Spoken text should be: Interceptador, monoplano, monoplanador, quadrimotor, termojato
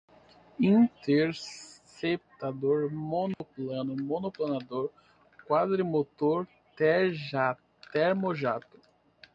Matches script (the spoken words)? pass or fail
pass